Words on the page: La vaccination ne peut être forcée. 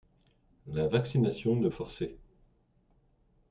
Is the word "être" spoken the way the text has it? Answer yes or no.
no